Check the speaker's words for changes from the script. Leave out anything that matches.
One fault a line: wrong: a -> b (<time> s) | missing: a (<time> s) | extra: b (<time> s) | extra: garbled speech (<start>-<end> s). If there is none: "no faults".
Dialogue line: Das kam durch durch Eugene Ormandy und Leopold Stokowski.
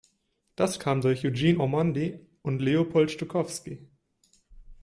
missing: durch (1.3 s)